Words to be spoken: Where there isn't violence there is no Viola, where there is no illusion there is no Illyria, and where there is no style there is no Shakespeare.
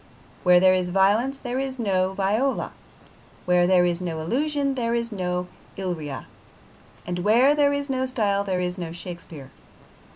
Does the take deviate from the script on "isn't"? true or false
true